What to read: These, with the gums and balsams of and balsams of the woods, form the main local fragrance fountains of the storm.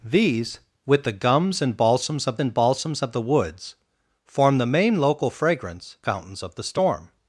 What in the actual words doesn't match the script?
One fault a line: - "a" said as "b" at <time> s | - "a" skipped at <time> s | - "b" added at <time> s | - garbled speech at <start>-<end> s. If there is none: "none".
none